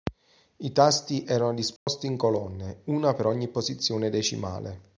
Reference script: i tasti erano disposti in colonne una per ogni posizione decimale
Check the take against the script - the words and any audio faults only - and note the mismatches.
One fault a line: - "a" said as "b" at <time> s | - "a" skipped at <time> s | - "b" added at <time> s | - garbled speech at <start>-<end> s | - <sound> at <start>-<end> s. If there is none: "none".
- dropout at 1.8-1.9 s